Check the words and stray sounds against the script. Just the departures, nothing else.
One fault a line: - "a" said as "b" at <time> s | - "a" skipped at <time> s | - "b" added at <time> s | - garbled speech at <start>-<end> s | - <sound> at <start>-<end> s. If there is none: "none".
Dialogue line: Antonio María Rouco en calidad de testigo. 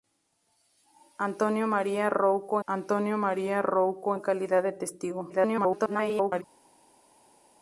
- "antonio María Rouco" added at 2.7 s
- garbled speech at 5.3-6.4 s